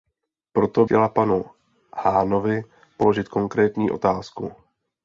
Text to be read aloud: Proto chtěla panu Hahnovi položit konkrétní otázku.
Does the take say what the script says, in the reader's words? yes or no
yes